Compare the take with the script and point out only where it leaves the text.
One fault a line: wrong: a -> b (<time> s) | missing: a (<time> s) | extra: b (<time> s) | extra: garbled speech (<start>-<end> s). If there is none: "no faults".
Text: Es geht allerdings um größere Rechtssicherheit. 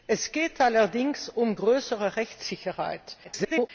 extra: garbled speech (3.2-3.7 s)